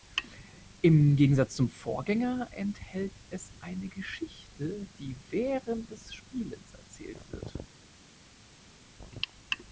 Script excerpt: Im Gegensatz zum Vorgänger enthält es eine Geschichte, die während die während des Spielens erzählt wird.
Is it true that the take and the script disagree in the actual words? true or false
true